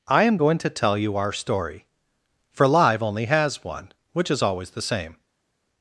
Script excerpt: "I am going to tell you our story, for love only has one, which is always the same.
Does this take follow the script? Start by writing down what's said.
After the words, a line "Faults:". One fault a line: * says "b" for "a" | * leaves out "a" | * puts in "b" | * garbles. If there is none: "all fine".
"I am going to tell you our story, for live only has one, which is always the same.
Faults:
* says "live" for "love"